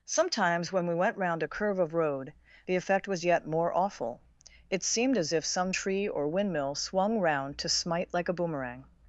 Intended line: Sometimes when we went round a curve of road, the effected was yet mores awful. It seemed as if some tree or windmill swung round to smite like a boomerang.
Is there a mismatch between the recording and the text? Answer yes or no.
yes